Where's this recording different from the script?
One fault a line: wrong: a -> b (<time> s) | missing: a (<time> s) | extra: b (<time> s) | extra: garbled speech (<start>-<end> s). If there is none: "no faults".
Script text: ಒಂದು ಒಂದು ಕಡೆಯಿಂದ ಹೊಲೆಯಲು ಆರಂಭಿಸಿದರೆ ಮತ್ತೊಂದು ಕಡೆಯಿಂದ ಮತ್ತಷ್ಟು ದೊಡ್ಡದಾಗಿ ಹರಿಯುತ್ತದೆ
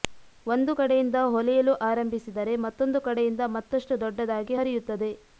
missing: ಒಂದು (0.7 s)